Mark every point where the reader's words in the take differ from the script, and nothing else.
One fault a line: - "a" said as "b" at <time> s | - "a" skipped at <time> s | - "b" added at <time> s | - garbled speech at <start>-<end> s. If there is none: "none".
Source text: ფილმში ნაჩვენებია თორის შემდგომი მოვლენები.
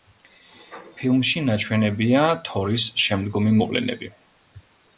none